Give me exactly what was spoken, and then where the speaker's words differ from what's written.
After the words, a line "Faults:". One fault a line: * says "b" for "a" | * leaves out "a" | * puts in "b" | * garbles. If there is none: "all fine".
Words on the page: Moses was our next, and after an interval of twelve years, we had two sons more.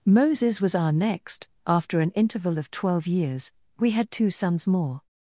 Moses was our next, after an interval of twelve years, we had two sons more.
Faults:
* leaves out "and"